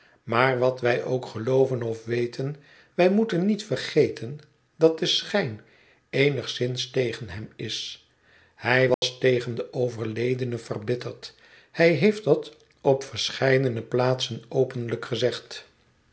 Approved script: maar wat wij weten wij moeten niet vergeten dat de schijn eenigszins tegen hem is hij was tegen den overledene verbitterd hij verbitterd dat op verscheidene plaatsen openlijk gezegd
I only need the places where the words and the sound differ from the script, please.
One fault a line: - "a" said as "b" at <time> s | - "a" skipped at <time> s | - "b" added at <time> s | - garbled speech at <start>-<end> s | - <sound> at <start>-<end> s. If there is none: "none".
- "ook gelooven of" added at 1.0 s
- dropout at 8.9-9.0 s
- "verbitterd" said as "heeft" at 11.9 s